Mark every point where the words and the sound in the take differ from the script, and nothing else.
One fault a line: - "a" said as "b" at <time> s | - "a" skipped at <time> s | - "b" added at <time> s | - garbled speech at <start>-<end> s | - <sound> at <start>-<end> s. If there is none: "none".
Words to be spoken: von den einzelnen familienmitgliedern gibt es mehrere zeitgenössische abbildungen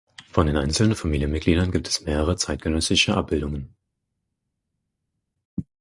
none